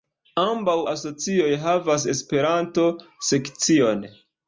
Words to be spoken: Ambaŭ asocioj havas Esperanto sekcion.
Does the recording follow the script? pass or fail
pass